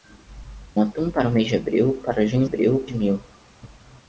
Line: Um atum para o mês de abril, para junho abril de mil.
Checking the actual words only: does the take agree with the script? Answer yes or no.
yes